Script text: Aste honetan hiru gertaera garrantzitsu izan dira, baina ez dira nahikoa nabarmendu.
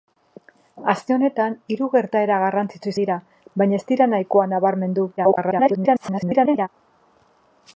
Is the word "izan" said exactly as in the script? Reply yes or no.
no